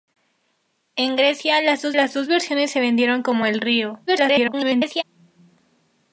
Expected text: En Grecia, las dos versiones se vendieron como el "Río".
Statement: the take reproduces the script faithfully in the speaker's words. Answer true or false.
false